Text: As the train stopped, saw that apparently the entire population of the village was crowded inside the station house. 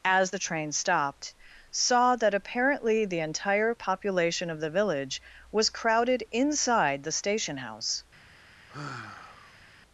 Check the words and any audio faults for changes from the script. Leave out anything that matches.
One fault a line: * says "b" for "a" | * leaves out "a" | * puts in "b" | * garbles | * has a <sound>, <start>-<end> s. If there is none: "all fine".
* has a sigh, 8.7-9.7 s